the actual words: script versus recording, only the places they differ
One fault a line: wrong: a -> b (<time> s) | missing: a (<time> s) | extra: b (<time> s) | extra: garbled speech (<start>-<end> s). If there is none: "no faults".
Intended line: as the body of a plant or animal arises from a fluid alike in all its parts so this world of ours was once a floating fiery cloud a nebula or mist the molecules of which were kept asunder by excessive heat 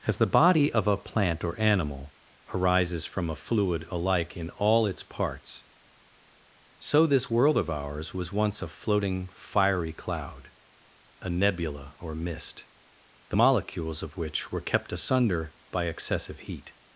no faults